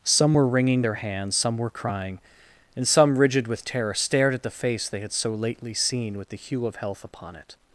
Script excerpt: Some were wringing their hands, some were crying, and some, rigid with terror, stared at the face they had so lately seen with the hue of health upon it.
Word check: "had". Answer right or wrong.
right